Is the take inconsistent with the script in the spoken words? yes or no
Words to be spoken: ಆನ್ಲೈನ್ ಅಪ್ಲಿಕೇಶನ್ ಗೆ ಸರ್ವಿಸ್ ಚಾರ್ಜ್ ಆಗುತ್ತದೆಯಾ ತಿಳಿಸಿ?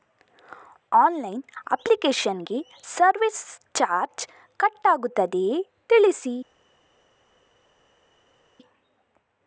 yes